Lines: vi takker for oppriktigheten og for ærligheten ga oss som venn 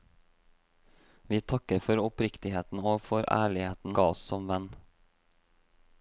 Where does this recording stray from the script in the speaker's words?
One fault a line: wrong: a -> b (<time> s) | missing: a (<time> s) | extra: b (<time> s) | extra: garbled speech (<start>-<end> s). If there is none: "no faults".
no faults